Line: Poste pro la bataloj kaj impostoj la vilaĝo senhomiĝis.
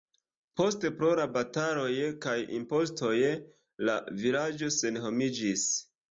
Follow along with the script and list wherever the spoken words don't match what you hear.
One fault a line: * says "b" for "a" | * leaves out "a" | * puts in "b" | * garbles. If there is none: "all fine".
all fine